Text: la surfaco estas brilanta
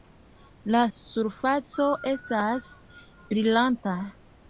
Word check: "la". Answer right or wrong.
right